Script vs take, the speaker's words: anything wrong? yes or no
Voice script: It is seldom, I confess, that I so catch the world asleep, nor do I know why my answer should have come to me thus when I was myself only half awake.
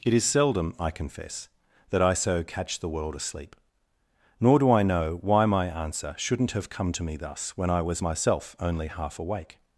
yes